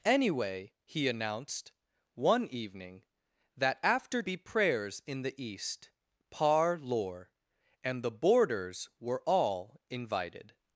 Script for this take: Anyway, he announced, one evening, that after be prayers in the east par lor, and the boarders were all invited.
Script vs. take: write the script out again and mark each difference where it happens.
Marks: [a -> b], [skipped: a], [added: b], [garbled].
Anyway, he announced, one evening, that after be prayers in the east par lor, and the boarders were all invited.